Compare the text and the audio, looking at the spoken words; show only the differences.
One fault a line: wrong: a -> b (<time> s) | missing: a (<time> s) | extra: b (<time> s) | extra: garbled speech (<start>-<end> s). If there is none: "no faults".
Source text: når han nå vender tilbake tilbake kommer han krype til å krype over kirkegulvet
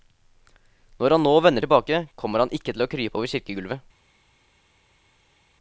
missing: tilbake (2.1 s)
wrong: krype -> ikke (2.5 s)